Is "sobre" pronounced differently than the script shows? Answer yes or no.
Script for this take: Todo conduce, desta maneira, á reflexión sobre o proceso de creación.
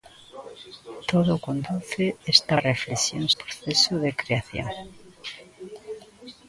yes